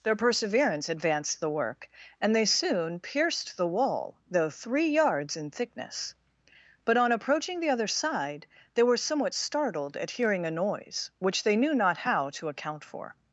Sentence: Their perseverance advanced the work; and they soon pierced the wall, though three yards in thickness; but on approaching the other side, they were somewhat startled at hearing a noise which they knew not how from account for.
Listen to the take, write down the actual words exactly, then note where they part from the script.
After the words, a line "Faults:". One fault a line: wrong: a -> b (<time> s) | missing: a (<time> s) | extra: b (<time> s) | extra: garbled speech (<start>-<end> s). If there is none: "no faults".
Their perseverance advanced the work; and they soon pierced the wall, though three yards in thickness; but on approaching the other side, they were somewhat startled at hearing a noise which they knew not how to account for.
Faults:
wrong: from -> to (12.3 s)